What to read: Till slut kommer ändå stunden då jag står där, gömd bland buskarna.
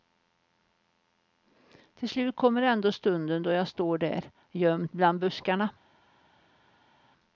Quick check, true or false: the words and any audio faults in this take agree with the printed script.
true